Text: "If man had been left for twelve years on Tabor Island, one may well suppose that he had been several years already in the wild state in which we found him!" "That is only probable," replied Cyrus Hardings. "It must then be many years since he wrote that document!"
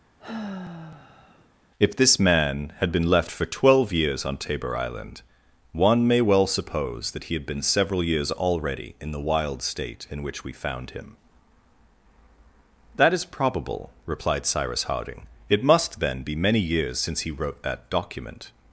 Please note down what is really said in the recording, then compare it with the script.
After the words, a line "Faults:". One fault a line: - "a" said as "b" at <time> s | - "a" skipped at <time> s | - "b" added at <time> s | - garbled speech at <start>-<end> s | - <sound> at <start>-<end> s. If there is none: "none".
"If this man had been left for twelve years on Tabor Island, one may well suppose that he had been several years already in the wild state in which we found him!" "That is probable," replied Cyrus Harding. "It must then be many years since he wrote that document!"
Faults:
- sigh at 0.2-1.5 s
- "this" added at 2.0 s
- "only" skipped at 13.2 s
- "Hardings" said as "Harding" at 14.8 s